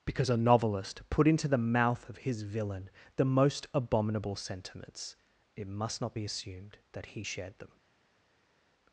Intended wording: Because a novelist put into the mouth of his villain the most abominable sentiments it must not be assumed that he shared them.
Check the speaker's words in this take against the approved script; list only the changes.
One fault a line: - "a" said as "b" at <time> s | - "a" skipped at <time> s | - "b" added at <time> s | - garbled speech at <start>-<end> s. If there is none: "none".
none